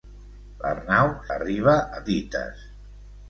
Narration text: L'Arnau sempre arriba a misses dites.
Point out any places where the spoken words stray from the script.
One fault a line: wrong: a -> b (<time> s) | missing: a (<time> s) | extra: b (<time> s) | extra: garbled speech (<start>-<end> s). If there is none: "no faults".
missing: sempre (1.1 s)
missing: misses (2.0 s)